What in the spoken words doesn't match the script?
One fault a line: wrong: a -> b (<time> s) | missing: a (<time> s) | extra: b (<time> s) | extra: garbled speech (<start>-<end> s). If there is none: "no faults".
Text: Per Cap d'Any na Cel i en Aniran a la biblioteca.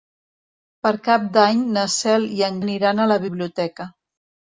no faults